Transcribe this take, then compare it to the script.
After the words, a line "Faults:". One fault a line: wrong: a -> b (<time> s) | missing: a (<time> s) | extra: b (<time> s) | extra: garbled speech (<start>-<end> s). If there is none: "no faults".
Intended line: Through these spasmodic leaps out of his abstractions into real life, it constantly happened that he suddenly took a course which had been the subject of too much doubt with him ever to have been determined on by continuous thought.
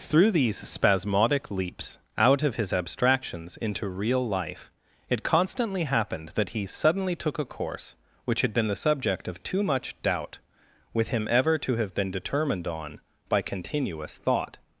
Through these spasmodic leaps out of his abstractions into real life, it constantly happened that he suddenly took a course which had been the subject of too much doubt with him ever to have been determined on by continuous thought.
Faults:
no faults